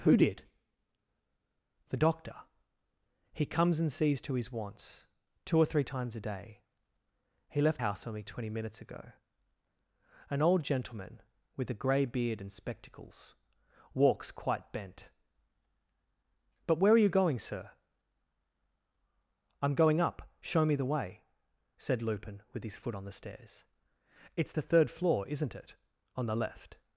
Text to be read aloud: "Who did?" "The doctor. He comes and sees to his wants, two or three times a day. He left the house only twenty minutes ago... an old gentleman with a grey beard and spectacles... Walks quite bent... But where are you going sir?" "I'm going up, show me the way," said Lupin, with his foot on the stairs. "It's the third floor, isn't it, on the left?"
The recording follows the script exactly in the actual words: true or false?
false